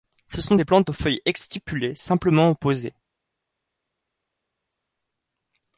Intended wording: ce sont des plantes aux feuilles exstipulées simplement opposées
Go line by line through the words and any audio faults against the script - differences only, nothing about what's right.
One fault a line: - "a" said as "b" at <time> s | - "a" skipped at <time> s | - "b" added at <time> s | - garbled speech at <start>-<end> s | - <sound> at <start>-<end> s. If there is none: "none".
none